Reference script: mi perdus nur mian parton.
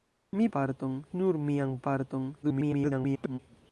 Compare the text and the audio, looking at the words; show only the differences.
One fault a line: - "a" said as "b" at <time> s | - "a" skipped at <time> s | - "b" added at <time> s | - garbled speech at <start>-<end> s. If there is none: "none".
- "perdus" said as "parton" at 0.5 s
- garbled speech at 2.4-3.4 s